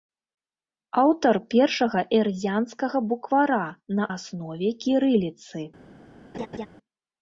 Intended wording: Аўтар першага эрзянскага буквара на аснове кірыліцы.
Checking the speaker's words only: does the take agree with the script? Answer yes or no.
yes